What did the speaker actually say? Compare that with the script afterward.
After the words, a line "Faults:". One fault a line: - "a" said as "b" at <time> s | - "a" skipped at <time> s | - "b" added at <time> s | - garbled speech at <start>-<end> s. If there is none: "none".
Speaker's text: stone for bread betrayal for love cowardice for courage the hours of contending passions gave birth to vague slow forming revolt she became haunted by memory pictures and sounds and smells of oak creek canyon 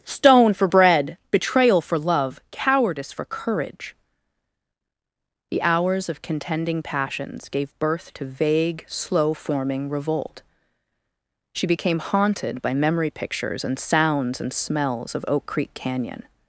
stone for bread betrayal for love cowardice for courage the hours of contending passions gave birth to vague slow forming revolt she became haunted by memory pictures and sounds and smells of oak creek canyon
Faults:
none